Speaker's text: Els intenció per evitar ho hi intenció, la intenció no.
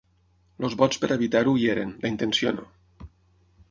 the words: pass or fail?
fail